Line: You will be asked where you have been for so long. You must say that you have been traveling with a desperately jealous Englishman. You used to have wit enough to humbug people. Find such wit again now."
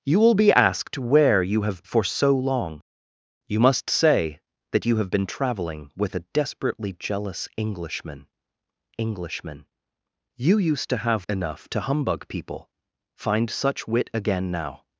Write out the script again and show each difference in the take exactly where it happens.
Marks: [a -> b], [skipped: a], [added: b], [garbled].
You will be asked where you have [skipped: been] for so long. You must say that you have been traveling with a desperately jealous Englishman. [added: Englishman] You used to have [skipped: wit] enough to humbug people. Find such wit again now."